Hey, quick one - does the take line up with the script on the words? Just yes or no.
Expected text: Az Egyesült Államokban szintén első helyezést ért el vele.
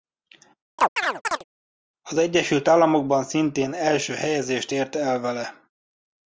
yes